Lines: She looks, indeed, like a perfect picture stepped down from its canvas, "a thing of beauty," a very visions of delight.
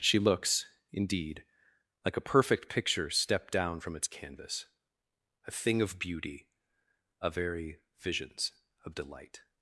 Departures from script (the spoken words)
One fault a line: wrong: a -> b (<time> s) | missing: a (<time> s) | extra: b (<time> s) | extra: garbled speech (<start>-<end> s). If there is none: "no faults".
no faults